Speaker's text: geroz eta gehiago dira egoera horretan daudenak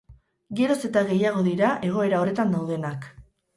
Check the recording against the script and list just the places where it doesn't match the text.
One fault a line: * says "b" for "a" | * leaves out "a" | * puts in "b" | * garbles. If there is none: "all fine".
all fine